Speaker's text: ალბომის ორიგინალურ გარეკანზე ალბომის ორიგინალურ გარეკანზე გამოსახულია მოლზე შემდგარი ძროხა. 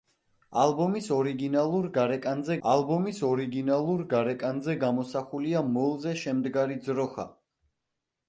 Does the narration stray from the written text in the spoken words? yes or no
no